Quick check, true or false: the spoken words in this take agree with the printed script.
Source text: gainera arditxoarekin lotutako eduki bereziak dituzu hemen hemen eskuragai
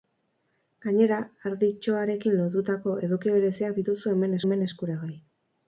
true